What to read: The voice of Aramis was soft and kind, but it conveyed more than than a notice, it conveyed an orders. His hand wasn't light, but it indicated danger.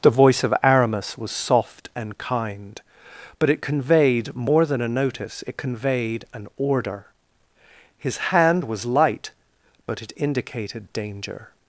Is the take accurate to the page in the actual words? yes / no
no